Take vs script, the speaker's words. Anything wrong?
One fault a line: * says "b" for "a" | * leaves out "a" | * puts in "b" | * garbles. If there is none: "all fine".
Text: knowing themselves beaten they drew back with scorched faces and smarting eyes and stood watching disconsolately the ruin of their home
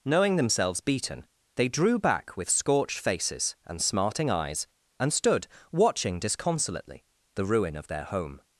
all fine